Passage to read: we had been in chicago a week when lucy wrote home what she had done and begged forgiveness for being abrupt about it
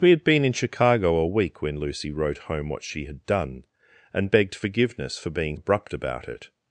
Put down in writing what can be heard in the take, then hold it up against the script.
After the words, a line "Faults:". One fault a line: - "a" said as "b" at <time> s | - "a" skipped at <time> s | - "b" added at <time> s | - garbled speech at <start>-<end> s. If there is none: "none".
we had been in chicago a week when lucy wrote home what she had done and begged forgiveness for being abrupt about it
Faults:
none